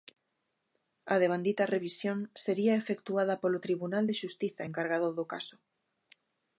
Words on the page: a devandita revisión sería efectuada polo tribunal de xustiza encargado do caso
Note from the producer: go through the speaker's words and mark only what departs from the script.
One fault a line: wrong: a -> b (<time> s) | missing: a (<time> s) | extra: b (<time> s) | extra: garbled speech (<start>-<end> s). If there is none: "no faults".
no faults